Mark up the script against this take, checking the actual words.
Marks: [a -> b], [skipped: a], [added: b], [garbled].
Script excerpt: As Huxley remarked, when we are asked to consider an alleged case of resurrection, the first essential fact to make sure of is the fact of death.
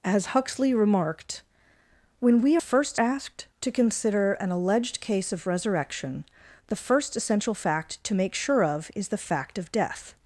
As Huxley remarked, when we [are -> first] asked to consider an alleged case of resurrection, the first essential fact to make sure of is the fact of death.